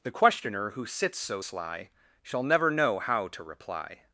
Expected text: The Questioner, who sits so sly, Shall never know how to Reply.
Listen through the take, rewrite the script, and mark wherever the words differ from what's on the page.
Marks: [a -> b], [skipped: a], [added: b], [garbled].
The Questioner, who sits so sly, Shall never know how to Reply.